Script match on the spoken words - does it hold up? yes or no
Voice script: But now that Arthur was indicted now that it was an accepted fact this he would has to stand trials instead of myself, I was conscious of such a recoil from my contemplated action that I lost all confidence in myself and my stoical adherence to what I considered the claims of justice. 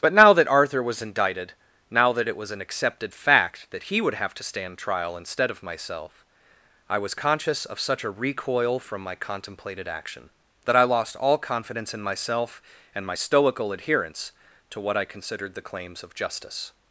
no